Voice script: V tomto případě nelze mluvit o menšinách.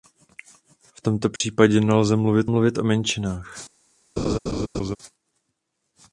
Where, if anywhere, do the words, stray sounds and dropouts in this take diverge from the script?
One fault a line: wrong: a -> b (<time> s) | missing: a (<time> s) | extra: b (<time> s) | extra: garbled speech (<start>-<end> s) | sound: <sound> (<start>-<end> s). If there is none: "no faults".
sound: dropout (1.4-1.4 s)
extra: mluvit (2.4 s)
sound: laugh (4.2-5.0 s)